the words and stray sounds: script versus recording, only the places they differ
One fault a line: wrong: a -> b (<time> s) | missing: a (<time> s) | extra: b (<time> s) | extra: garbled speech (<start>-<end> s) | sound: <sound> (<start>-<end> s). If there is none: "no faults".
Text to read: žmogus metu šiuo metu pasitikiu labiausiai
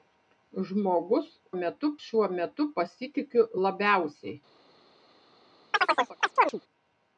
sound: chirp (5.7-6.6 s)